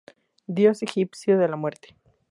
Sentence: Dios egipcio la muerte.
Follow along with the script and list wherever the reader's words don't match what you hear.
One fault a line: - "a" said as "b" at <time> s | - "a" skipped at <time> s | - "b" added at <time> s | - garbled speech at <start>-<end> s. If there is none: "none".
- "de" added at 1.4 s